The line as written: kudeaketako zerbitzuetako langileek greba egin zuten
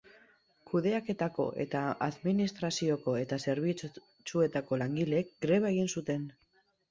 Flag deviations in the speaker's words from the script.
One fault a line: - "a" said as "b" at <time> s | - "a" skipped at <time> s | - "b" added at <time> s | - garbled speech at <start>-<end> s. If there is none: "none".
- "eta administrazioko eta" added at 1.6 s